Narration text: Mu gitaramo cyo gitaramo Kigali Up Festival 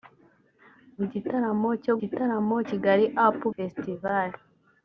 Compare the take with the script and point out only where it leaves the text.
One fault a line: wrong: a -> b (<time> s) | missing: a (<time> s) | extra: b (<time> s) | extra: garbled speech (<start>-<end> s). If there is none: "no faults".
no faults